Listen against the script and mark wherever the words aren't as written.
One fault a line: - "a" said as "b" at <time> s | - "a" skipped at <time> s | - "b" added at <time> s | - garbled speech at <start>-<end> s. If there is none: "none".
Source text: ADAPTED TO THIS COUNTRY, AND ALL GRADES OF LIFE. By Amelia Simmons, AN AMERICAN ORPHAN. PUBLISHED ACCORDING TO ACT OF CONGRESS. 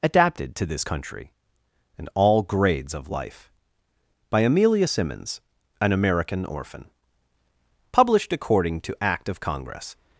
none